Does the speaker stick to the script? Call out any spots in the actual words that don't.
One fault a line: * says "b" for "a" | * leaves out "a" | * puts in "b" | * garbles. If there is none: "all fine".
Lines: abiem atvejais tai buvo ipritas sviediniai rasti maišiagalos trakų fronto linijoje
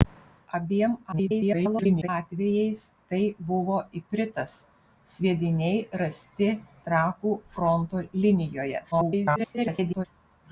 * garbles
* leaves out "maišiagalos"
* garbles